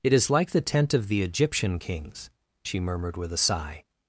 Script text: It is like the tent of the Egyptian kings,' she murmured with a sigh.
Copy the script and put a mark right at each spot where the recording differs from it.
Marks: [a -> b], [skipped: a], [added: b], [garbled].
It is like the tent of the Egyptian kings,' she murmured with a sigh.